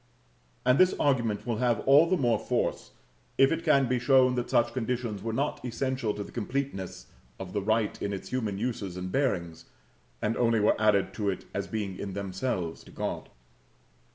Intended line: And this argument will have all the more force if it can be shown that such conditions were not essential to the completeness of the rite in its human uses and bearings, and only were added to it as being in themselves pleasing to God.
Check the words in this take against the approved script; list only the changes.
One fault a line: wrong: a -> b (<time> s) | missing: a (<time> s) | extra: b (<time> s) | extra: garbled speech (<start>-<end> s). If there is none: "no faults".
missing: pleasing (12.9 s)